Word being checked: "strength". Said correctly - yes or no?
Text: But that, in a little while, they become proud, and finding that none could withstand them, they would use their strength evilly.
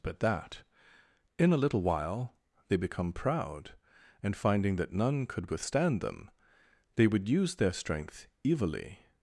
yes